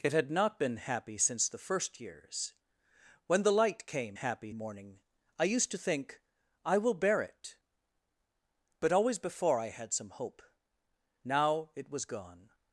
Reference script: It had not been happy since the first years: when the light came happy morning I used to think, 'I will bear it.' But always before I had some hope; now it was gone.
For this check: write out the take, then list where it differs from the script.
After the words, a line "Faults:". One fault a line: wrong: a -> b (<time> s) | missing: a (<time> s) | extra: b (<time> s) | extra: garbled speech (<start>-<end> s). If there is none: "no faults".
It had not been happy since the first years: when the light came happy morning I used to think, 'I will bear it.' But always before I had some hope; now it was gone.
Faults:
no faults